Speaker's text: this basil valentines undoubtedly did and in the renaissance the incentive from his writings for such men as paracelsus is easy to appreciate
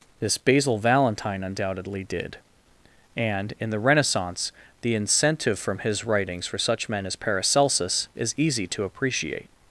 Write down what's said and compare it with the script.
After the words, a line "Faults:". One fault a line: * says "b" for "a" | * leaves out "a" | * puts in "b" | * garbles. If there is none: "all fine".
this basil valentine undoubtedly did and in the renaissance the incentive from his writings for such men as paracelsus is easy to appreciate
Faults:
* says "valentine" for "valentines"